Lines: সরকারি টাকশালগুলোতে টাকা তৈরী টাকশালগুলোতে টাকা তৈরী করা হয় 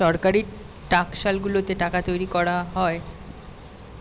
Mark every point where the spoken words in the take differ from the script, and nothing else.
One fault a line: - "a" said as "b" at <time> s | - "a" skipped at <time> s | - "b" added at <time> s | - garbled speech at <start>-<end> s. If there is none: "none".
- "টাকশালগুলোতে টাকা তৈরী" skipped at 2.3 s